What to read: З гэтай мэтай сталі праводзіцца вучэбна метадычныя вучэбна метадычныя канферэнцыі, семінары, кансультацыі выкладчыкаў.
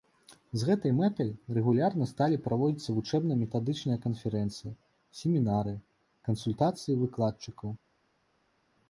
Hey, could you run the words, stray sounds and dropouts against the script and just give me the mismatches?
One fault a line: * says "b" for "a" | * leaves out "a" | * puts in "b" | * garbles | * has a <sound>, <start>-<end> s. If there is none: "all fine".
* puts in "рэгулярна"
* leaves out "вучэбна метадычныя"